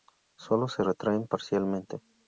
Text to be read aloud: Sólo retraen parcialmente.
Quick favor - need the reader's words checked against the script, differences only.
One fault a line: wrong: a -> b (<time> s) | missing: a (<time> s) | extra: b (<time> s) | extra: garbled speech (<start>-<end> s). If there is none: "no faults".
extra: se (0.7 s)